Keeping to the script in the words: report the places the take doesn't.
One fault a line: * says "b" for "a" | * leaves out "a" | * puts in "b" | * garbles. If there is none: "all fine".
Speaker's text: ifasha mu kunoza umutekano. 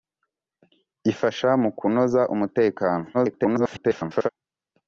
* garbles